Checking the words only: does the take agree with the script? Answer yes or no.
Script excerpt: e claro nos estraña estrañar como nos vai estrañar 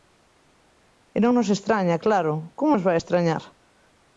no